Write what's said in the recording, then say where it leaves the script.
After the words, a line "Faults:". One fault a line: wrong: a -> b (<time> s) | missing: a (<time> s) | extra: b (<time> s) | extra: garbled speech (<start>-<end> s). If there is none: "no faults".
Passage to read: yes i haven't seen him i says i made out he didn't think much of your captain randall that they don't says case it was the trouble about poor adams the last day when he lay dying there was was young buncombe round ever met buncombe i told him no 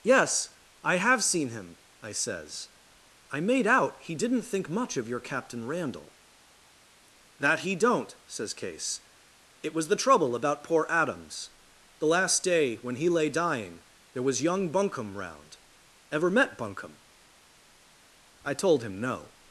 yes i have seen him i says i made out he didn't think much of your captain randall that he don't says case it was the trouble about poor adams the last day when he lay dying there was young buncombe round ever met buncombe i told him no
Faults:
wrong: haven't -> have (0.9 s)
wrong: they -> he (7.6 s)
missing: was (14.4 s)